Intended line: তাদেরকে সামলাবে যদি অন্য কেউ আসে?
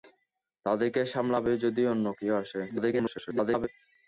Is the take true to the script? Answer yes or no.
no